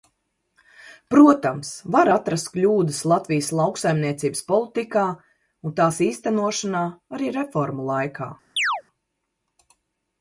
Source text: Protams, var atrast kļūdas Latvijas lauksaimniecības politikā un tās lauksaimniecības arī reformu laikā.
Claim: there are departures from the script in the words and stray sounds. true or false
true